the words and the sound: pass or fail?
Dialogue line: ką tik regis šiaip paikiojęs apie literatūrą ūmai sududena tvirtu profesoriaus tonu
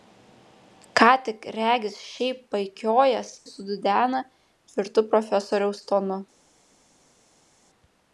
fail